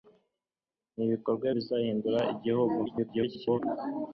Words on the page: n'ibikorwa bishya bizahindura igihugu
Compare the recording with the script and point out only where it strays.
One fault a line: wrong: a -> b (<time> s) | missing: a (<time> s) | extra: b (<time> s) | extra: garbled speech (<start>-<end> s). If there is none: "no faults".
missing: bishya (1.5 s)
extra: garbled speech (2.9-3.6 s)